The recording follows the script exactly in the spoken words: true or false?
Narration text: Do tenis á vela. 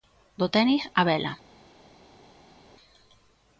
true